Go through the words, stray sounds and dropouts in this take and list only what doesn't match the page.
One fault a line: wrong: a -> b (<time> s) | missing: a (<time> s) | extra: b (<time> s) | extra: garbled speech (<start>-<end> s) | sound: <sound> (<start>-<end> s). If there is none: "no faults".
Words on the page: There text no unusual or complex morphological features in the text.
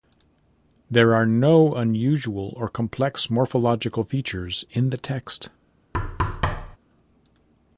wrong: text -> are (1.1 s)
sound: thud (5.9-6.8 s)